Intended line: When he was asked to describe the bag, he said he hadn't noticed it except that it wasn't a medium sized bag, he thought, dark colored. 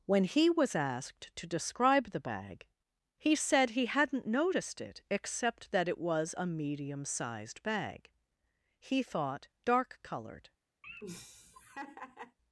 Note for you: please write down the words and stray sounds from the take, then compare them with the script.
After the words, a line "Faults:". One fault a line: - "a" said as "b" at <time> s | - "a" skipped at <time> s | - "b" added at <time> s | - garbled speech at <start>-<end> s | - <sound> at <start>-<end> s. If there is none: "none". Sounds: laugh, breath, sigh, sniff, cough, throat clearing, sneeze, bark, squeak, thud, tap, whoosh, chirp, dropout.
When he was asked to describe the bag, he said he hadn't noticed it except that it was a medium sized bag, he thought, dark colored.
Faults:
- "wasn't" said as "was" at 6.0 s
- laugh at 10.8-12.4 s